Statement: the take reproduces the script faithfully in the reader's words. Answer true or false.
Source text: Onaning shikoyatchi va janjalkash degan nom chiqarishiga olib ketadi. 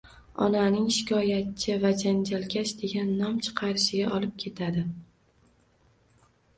true